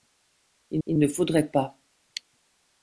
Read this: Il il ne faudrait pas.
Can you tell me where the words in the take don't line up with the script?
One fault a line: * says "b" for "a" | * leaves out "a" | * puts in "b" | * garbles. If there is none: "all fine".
all fine